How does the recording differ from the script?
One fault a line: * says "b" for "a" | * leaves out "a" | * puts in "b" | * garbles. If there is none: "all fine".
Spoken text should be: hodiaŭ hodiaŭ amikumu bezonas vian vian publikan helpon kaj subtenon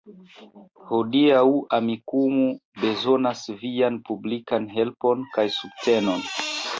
* leaves out "hodiaŭ"
* leaves out "vian"